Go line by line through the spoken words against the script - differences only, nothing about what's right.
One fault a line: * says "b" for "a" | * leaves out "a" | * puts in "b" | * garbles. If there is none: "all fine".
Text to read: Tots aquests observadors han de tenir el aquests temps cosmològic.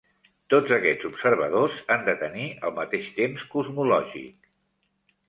* says "mateix" for "aquests"